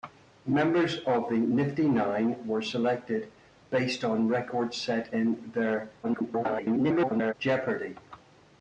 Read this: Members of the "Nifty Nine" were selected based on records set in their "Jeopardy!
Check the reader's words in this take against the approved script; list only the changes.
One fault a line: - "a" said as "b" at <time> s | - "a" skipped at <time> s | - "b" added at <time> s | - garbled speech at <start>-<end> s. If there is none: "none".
- garbled speech at 6.0-7.3 s